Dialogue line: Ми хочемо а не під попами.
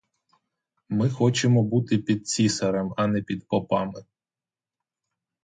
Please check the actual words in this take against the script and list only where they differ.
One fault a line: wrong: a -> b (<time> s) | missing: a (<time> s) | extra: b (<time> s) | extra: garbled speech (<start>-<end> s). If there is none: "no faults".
extra: бути під цісарем (1.6 s)